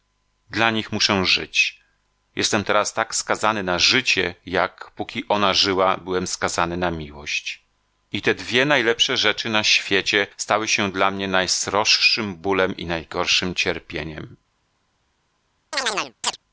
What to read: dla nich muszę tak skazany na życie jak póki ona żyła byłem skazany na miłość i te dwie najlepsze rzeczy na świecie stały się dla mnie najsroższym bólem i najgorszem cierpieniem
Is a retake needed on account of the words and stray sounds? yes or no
yes